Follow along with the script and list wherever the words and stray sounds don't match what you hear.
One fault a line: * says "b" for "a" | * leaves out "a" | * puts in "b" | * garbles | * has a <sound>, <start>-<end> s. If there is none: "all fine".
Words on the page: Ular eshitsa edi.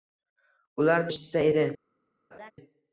* has a laugh, 2.3-2.5 s